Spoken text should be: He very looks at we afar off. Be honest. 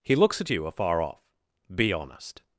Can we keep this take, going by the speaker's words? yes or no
no